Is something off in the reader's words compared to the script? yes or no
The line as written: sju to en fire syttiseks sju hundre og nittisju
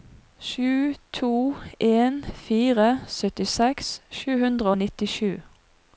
no